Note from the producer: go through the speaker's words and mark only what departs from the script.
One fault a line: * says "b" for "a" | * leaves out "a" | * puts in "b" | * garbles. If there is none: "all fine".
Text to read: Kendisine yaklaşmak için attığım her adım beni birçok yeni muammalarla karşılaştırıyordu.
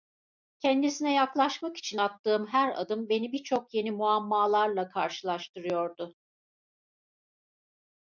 all fine